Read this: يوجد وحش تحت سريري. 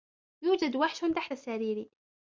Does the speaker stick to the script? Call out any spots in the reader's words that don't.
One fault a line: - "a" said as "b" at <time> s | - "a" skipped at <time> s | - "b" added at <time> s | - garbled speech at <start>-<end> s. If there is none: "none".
none